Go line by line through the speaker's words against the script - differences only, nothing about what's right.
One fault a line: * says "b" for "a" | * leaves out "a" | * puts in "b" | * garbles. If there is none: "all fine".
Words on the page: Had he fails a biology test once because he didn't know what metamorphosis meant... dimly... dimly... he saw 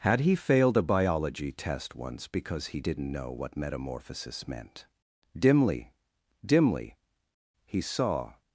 * says "failed" for "fails"